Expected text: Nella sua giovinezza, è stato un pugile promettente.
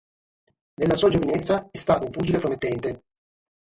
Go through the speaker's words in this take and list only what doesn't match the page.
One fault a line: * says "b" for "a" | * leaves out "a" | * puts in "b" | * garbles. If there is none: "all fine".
all fine